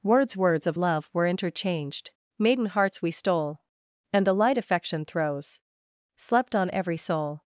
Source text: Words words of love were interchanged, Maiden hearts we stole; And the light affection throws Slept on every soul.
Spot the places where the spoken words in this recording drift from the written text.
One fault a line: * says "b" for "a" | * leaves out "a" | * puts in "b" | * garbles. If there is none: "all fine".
all fine